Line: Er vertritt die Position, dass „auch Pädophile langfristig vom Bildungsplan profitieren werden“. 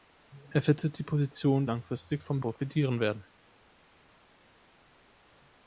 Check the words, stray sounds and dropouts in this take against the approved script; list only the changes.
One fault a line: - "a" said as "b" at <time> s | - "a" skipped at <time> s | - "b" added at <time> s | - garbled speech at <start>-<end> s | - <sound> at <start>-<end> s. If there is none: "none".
- "dass auch Pädophile" skipped at 1.7 s
- "Bildungsplan" skipped at 2.4 s